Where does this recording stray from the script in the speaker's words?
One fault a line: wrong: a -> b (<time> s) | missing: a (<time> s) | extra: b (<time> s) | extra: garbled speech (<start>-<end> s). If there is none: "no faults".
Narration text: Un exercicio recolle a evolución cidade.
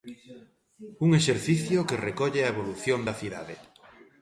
extra: que (1.9 s)
extra: da (3.1 s)